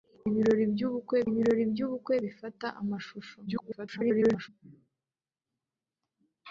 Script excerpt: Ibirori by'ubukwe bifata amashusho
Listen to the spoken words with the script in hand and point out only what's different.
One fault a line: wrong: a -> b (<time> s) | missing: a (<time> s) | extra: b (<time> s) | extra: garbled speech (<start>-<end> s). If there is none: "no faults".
extra: ibirori by'ubukwe (1.3 s)
extra: garbled speech (3.5-4.5 s)